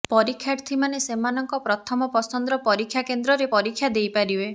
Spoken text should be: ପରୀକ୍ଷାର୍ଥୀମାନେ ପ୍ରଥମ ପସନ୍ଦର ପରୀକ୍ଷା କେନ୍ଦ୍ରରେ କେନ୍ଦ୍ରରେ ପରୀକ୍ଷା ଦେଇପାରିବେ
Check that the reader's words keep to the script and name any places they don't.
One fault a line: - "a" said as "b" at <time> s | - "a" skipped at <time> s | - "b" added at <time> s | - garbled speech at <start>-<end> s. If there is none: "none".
- "ସେମାନଙ୍କ" added at 1.0 s
- "କେନ୍ଦ୍ରରେ" skipped at 3.5 s